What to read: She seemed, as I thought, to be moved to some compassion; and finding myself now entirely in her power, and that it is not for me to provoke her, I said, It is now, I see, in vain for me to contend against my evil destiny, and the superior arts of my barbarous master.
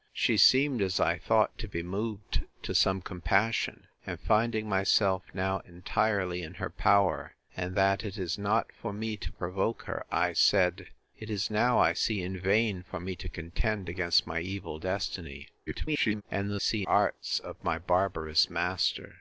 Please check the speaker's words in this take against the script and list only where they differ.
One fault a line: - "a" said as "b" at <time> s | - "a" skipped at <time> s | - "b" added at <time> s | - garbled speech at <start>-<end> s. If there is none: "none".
- garbled speech at 15.7-16.2 s
- "superior" said as "see" at 16.6 s